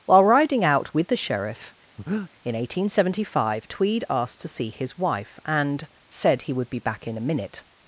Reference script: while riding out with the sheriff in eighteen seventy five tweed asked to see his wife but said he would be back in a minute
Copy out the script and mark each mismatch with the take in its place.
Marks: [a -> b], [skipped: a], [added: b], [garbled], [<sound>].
while riding out with the sheriff [breath] in eighteen seventy five tweed asked to see his wife [but -> and] said he would be back in a minute